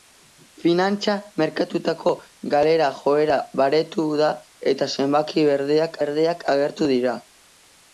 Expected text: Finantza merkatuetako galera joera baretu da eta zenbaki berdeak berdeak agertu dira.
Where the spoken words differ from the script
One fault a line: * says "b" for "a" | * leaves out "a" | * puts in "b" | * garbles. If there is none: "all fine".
all fine